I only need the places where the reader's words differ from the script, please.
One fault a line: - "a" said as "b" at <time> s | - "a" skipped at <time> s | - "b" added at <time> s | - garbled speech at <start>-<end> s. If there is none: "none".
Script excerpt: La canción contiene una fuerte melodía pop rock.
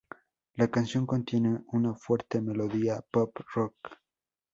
none